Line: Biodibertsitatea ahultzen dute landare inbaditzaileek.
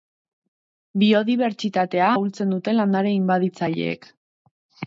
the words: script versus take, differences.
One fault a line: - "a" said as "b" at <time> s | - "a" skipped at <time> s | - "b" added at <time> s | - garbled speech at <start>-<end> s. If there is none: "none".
none